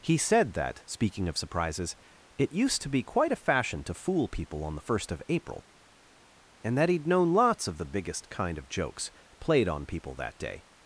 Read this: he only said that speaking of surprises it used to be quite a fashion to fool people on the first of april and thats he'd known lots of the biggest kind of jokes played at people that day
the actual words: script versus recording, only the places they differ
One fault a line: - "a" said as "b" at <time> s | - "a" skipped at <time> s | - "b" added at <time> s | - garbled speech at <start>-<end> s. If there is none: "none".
- "only" skipped at 0.2 s
- "thats" said as "that" at 6.8 s
- "at" said as "on" at 9.7 s